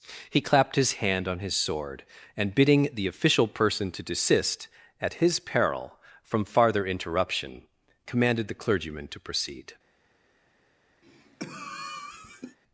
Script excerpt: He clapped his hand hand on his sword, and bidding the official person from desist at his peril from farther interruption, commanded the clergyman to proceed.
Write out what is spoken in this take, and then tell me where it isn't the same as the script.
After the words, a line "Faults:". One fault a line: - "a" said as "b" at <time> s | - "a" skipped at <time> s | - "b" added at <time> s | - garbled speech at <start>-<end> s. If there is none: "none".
He clapped his hand on his sword, and bidding the official person to desist at his peril from farther interruption, commanded the clergyman to proceed.
Faults:
- "hand" skipped at 1.3 s
- "from" said as "to" at 3.9 s